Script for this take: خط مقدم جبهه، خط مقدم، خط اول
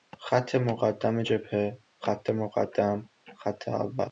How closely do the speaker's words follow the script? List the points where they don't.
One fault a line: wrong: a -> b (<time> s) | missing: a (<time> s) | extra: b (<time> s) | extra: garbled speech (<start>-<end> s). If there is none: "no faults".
no faults